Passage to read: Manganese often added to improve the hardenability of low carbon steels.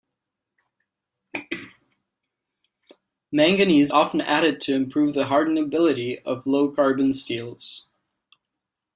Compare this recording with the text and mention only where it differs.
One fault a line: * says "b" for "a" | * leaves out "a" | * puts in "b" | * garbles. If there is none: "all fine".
all fine